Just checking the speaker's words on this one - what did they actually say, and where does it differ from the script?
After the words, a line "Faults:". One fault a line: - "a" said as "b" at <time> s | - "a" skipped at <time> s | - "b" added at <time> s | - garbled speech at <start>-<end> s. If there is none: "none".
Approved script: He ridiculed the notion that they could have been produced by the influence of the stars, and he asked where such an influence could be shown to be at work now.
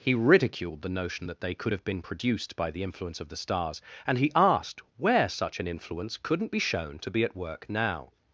He ridiculed the notion that they could have been produced by the influence of the stars, and he asked where such an influence couldn't be shown to be at work now.
Faults:
- "could" said as "couldn't" at 6.2 s